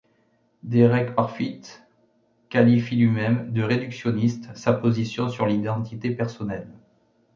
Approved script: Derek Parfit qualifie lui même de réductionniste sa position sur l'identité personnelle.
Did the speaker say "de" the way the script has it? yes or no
yes